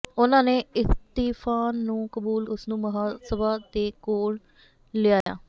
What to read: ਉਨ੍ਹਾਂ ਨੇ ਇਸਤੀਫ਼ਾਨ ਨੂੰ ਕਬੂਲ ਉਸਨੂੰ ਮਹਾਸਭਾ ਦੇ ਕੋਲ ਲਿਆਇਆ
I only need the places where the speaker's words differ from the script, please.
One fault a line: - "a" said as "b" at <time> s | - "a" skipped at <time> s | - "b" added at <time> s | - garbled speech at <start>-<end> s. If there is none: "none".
none